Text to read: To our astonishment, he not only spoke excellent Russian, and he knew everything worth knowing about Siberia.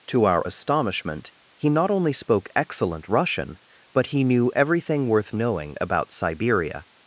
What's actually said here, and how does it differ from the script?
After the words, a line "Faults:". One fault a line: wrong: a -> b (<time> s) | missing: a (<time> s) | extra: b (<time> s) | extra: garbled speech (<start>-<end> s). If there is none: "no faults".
To our astonishment, he not only spoke excellent Russian, but he knew everything worth knowing about Siberia.
Faults:
wrong: and -> but (3.9 s)